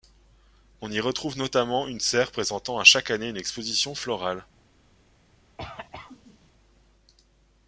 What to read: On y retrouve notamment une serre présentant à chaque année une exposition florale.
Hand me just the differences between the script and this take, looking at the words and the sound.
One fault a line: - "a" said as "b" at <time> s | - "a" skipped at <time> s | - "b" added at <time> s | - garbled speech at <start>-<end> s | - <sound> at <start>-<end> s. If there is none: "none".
- cough at 5.6-6.5 s